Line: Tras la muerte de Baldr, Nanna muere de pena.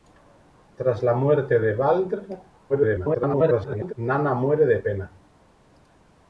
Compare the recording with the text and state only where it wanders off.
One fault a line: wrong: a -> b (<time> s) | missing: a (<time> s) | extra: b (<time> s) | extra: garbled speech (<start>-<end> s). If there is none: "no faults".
extra: garbled speech (2.7-3.9 s)